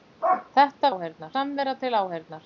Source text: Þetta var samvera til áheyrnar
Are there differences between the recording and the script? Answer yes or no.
yes